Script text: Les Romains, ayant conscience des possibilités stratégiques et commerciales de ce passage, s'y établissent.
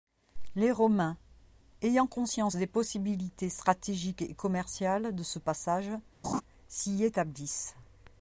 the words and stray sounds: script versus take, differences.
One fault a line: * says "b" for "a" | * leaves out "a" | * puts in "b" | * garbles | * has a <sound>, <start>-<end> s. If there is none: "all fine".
* has a laugh, 6.2-6.4 s